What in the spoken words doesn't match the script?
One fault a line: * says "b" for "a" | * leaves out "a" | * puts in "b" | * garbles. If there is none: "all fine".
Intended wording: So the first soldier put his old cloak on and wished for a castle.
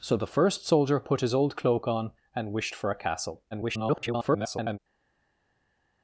* garbles